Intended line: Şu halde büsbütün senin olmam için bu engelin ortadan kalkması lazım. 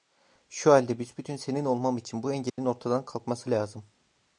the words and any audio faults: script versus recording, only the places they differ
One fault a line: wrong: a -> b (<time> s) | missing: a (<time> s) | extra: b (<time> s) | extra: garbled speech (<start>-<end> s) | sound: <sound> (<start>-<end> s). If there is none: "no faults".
sound: dropout (2.5-2.6 s)